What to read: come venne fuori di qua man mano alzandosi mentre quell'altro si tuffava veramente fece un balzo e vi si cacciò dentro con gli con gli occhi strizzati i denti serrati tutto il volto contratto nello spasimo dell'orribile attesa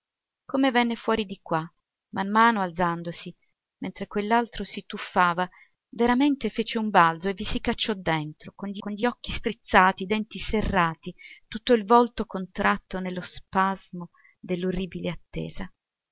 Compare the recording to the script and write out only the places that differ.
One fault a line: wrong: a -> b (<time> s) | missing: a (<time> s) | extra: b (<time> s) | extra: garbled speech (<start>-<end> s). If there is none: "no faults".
no faults